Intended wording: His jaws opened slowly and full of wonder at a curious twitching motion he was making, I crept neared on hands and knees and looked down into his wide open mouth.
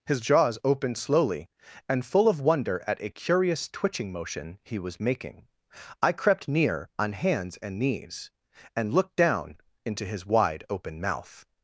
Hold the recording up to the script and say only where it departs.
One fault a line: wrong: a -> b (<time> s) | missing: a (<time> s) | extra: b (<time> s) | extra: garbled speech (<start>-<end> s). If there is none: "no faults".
wrong: neared -> near (6.5 s)